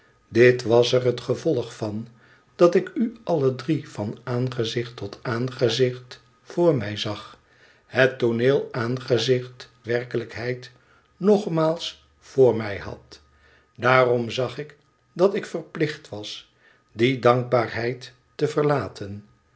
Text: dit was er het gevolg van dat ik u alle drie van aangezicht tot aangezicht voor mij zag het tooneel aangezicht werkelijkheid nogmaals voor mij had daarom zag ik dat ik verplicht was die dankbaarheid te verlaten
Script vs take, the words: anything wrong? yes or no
no